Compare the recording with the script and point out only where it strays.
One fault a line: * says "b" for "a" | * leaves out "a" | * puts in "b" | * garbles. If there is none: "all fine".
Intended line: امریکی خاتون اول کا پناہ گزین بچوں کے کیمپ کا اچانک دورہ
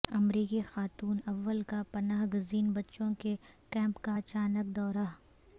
all fine